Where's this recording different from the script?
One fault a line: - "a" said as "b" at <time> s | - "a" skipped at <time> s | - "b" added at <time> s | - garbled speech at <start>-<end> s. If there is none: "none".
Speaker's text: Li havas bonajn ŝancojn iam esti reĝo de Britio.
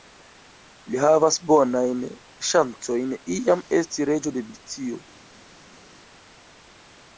none